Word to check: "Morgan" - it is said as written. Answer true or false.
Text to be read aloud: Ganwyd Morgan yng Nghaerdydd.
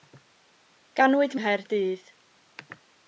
false